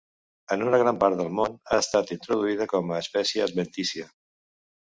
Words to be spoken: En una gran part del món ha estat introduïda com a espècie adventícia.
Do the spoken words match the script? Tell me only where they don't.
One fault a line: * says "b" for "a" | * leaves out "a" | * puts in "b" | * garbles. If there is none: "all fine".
all fine